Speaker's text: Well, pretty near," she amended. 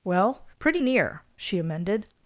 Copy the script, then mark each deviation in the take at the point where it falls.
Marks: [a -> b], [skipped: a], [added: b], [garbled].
Well, pretty near," she amended.